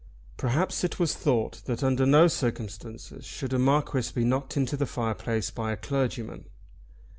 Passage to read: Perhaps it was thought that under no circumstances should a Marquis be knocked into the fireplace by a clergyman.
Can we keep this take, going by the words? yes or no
yes